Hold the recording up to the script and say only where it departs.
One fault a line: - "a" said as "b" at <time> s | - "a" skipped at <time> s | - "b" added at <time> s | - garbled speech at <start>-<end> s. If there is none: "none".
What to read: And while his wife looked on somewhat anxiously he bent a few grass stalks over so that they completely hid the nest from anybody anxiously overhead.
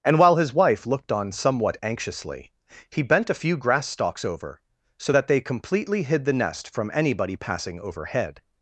- "anxiously" said as "passing" at 7.4 s